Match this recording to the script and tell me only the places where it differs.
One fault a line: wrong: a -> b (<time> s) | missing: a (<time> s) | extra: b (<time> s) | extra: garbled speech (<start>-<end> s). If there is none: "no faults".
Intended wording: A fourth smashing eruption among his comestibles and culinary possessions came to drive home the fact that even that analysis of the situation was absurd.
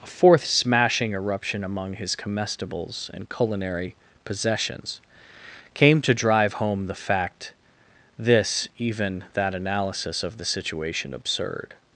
wrong: that -> this (8.2 s)
missing: was (11.1 s)